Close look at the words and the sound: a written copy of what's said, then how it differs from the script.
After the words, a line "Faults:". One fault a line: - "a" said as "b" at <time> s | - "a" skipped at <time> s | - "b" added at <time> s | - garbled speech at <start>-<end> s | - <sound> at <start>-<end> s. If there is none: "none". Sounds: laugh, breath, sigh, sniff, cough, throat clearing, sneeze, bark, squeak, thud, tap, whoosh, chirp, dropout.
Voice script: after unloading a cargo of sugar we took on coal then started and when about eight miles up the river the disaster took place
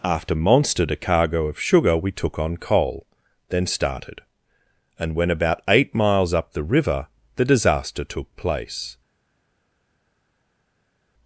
after monstered a cargo of sugar we took on coal then started and when about eight miles up the river the disaster took place
Faults:
- "unloading" said as "monstered" at 0.3 s